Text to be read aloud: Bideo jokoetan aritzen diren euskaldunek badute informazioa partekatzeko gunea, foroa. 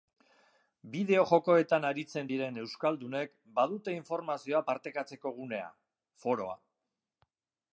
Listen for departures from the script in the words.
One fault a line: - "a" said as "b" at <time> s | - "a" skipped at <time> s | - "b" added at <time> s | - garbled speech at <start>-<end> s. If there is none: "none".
none